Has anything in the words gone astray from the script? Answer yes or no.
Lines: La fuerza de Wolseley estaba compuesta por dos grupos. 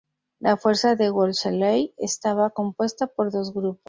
no